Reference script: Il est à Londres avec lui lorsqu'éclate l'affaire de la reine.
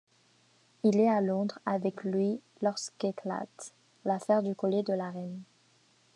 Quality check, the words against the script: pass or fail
fail